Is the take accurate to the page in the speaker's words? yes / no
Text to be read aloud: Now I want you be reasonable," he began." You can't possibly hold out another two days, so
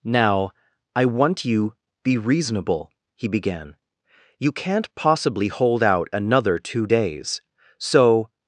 yes